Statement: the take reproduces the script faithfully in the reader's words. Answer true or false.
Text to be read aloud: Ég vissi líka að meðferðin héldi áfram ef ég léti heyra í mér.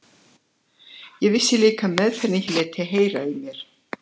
false